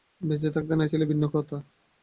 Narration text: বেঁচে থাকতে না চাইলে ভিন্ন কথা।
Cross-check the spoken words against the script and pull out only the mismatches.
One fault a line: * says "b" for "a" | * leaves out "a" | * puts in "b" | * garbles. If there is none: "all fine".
all fine